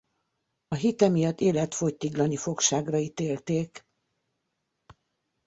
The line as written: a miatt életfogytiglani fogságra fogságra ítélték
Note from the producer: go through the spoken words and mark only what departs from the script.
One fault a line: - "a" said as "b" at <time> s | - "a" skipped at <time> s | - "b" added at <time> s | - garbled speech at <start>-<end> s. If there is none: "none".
- "hite" added at 0.7 s
- "fogságra" skipped at 3.0 s